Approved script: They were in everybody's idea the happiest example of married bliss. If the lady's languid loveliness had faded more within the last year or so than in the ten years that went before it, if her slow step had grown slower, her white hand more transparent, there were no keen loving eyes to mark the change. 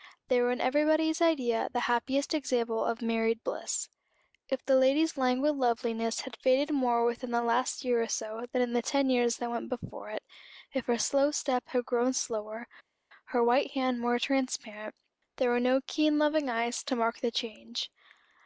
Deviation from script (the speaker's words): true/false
false